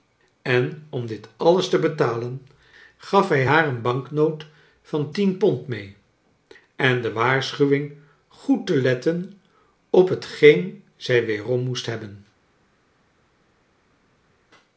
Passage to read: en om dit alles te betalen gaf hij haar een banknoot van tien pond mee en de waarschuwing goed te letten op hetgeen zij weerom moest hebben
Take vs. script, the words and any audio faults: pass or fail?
pass